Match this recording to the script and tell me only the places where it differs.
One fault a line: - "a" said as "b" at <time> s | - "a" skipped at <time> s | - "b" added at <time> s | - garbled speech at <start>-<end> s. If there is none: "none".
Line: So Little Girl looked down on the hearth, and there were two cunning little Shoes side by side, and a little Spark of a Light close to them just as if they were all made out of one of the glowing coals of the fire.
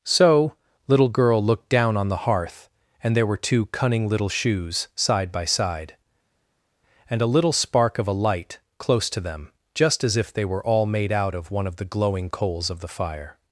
none